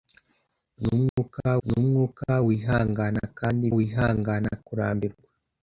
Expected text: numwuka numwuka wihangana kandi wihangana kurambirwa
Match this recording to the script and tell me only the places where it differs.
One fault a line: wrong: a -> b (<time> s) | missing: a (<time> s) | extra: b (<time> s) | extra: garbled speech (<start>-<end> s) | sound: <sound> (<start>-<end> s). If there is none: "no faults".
sound: dropout (1.1-1.2 s)